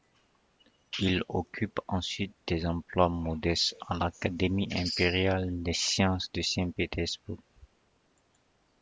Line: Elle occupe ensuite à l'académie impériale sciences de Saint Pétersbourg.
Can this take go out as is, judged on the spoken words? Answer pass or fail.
fail